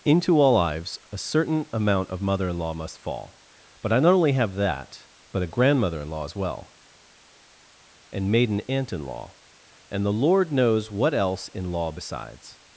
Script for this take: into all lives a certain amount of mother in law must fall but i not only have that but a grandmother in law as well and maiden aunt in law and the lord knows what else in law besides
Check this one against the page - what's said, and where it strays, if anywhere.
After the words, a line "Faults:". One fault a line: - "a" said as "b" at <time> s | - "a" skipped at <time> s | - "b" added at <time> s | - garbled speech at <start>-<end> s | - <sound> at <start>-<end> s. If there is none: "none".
into all lives a certain amount of mother in law must fall but i not only have that but a grandmother in law as well and maiden aunt in law and the lord knows what else in law besides
Faults:
none